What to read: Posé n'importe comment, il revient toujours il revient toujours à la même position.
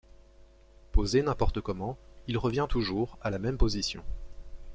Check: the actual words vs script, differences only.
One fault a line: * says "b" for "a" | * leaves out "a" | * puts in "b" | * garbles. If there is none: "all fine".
* leaves out "il revient toujours"